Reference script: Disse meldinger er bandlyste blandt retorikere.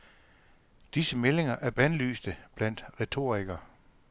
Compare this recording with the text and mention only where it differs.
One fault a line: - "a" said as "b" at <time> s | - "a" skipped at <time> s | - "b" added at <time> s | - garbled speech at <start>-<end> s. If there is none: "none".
none